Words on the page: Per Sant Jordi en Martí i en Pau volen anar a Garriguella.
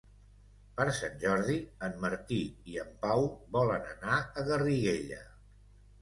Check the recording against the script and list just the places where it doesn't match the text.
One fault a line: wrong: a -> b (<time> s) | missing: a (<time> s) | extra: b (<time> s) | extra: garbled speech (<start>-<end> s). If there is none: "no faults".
no faults